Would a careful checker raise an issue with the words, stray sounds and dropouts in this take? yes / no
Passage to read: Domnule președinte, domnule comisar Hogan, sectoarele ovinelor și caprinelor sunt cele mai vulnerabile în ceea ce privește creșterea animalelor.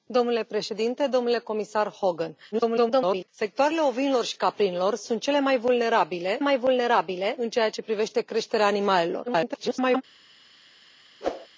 yes